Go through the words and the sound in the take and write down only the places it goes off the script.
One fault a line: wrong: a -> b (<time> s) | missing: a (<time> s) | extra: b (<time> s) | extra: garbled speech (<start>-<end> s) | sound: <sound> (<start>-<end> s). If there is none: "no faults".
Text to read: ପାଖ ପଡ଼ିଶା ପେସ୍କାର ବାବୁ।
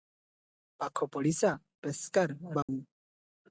sound: dropout (2.6-2.7 s)